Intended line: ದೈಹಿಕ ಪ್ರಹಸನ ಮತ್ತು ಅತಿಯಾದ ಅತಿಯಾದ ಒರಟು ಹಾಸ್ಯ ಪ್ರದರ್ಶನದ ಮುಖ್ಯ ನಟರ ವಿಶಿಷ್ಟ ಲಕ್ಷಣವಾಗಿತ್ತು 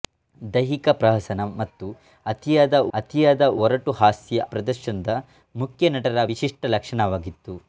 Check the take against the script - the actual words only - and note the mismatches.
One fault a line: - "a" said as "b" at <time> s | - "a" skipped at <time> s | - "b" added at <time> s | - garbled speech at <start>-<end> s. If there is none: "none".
none